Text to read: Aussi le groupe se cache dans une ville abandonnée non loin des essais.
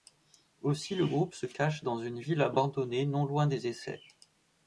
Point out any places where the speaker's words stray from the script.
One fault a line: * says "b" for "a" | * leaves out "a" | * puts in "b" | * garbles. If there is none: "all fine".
all fine